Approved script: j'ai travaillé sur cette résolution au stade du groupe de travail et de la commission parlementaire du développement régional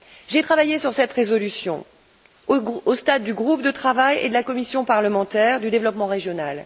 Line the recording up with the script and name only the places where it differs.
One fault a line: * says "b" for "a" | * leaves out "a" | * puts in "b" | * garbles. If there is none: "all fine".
all fine